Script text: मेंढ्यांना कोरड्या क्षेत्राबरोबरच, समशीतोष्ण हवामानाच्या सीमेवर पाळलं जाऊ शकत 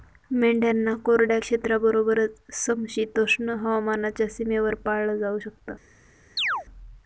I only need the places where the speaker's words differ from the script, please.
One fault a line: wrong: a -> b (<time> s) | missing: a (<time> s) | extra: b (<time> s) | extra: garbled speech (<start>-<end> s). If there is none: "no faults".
no faults